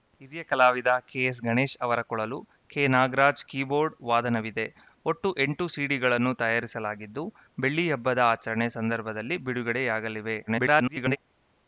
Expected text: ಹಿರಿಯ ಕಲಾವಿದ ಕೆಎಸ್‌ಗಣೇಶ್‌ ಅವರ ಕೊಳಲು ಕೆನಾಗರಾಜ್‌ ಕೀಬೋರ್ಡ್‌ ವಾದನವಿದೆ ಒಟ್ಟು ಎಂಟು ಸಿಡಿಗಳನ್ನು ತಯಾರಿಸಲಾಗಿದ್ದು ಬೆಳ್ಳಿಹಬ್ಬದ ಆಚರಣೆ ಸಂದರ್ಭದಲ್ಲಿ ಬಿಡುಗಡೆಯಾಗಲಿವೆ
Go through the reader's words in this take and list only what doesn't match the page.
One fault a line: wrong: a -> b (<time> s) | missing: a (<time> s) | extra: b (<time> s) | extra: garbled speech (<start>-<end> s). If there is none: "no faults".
extra: garbled speech (10.5-11.2 s)